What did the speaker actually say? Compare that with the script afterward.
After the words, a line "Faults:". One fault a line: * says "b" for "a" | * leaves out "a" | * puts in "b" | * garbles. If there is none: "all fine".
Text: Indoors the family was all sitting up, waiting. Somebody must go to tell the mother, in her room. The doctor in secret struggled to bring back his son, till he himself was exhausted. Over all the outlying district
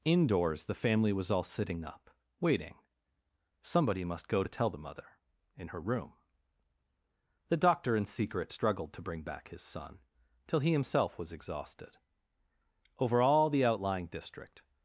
Indoors the family was all sitting up, waiting. Somebody must go to tell the mother, in her room. The doctor in secret struggled to bring back his son, till he himself was exhausted. Over all the outlying district
Faults:
all fine